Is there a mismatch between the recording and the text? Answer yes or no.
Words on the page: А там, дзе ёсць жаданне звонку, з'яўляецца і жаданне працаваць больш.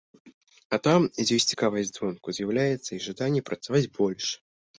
yes